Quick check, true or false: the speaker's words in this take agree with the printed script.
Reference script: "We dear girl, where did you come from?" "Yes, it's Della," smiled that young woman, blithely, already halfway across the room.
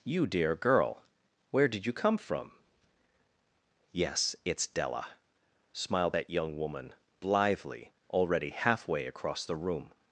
false